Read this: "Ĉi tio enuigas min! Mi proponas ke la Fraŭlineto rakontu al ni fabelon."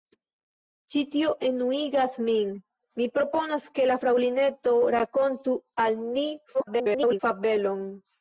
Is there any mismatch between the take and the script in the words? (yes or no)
yes